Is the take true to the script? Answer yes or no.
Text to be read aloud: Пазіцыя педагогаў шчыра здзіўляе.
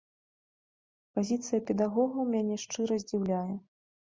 no